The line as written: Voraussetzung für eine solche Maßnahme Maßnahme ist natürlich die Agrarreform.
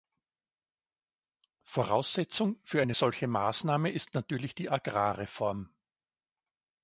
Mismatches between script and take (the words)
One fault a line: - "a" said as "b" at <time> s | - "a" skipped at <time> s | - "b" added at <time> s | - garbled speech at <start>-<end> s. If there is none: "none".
- "Maßnahme" skipped at 3.9 s